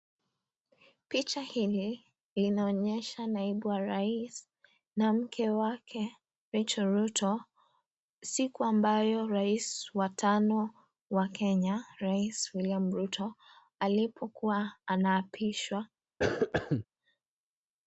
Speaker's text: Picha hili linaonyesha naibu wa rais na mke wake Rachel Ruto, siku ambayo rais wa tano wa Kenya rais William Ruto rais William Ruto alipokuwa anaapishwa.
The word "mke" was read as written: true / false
true